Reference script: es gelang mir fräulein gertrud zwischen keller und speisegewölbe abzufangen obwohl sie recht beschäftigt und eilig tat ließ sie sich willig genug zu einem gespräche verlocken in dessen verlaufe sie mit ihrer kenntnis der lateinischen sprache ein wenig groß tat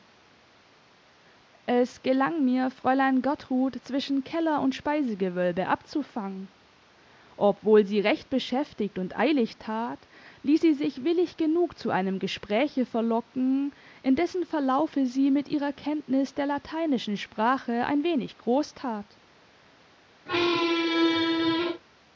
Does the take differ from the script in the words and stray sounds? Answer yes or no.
yes